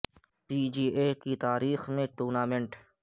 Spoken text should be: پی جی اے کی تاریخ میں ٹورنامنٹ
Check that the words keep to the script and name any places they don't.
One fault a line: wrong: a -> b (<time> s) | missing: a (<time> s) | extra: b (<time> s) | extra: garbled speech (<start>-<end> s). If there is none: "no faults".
no faults